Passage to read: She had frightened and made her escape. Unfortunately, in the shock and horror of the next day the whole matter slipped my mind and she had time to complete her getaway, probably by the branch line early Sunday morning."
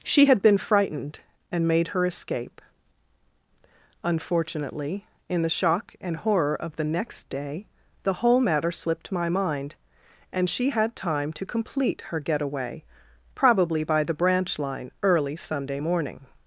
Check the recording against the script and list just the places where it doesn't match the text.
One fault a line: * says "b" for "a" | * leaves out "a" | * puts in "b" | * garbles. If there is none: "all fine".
* puts in "been"